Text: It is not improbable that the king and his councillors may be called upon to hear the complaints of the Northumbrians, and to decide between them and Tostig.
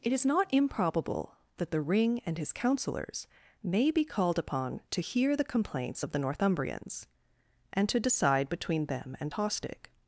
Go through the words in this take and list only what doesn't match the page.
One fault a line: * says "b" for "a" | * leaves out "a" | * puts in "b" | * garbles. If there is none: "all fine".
* says "ring" for "king"